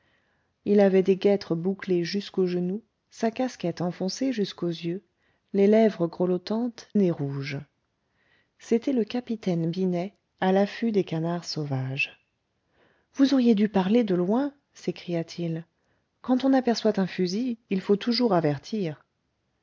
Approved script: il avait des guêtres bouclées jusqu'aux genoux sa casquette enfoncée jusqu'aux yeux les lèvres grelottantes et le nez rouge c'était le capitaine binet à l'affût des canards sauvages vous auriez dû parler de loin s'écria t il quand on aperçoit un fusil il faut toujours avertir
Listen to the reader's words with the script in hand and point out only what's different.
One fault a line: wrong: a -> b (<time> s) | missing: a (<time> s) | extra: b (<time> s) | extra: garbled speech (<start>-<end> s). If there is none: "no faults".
missing: et le (6.9 s)